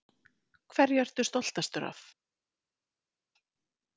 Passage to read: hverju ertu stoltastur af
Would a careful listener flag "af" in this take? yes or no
no